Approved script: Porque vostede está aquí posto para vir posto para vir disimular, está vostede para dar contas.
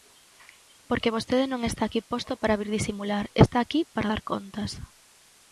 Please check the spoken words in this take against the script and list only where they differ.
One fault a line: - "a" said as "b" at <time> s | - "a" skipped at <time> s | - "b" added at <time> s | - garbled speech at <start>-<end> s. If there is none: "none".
- "non" added at 1.5 s
- "posto para vir" skipped at 2.7 s
- "vostede" said as "aquí" at 3.6 s